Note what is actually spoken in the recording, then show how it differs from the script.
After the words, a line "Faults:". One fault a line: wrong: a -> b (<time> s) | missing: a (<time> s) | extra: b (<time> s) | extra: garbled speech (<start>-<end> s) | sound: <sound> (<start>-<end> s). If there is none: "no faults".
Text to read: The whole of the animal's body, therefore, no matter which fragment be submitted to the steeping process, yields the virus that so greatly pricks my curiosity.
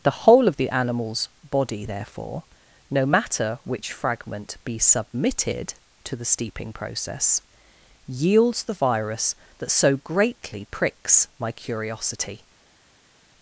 The whole of the animal's body, therefore, no matter which fragment be submitted to the steeping process, yields the virus that so greatly pricks my curiosity.
Faults:
no faults